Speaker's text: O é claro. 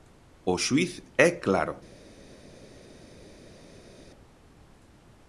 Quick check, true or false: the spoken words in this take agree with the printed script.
false